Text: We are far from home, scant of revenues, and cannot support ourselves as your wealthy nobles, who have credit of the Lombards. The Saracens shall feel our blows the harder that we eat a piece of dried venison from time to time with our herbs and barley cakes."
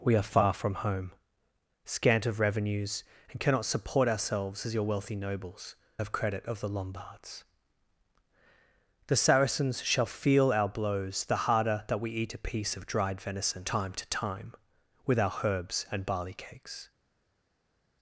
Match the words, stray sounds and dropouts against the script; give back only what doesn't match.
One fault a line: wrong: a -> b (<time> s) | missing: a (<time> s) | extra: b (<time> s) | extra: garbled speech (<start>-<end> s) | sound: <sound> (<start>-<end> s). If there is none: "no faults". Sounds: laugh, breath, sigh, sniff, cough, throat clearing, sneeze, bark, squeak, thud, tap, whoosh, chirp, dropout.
missing: who (5.8 s)
missing: from (13.6 s)